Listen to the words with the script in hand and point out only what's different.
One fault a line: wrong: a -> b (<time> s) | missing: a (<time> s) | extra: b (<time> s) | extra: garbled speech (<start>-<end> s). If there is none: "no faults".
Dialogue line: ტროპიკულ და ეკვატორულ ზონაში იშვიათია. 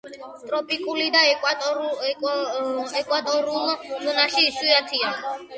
no faults